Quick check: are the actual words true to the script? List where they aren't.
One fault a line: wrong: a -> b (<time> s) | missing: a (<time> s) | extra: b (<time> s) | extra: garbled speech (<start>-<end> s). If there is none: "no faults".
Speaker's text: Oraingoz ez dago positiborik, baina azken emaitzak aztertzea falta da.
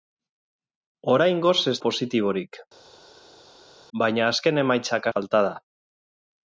missing: dago (1.8 s)
missing: aztertzea (5.1 s)